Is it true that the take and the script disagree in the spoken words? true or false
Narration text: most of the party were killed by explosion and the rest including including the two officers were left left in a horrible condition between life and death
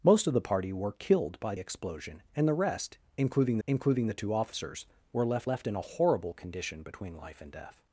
false